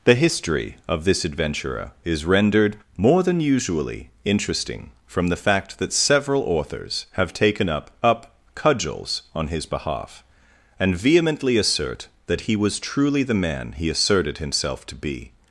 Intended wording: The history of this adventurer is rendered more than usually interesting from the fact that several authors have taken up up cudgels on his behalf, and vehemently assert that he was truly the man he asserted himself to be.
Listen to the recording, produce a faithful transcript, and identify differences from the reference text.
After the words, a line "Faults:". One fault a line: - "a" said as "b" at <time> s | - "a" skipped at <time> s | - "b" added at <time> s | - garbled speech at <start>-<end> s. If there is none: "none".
The history of this adventurer is rendered more than usually interesting from the fact that several authors have taken up up cudgels on his behalf, and vehemently assert that he was truly the man he asserted himself to be.
Faults:
none